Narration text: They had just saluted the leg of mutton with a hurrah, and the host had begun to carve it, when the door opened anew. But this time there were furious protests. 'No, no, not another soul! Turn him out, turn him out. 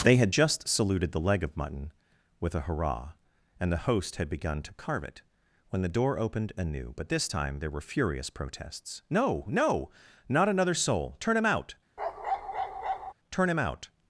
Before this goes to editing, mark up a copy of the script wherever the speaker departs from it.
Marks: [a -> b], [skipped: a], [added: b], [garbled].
They had just saluted the leg of mutton with a hurrah, and the host had begun to carve it, when the door opened anew. But this time there were furious protests. 'No, no, not another soul! Turn him out, turn him out.